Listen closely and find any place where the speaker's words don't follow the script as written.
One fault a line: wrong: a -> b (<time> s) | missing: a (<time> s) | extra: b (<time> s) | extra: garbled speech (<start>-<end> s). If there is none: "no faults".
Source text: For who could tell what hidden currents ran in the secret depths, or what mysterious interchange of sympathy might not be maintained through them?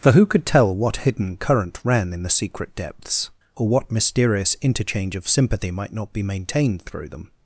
wrong: currents -> current (1.4 s)